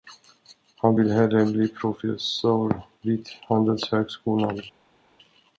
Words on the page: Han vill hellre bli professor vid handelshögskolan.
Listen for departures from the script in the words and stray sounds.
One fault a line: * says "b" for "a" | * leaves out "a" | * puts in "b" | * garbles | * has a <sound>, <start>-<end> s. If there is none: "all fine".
all fine